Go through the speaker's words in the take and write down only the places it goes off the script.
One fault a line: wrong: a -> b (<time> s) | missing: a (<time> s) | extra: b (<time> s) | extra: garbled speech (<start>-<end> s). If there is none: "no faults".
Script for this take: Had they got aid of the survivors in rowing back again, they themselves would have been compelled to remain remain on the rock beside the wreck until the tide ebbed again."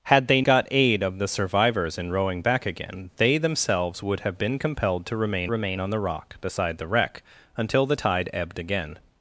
no faults